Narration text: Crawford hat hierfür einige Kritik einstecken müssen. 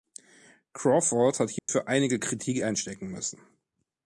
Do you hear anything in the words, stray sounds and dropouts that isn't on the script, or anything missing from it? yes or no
yes